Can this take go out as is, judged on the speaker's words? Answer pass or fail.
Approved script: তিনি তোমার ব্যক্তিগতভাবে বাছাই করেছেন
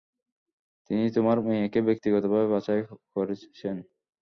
fail